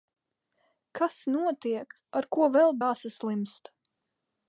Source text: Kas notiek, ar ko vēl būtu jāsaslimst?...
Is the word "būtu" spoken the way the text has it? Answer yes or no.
no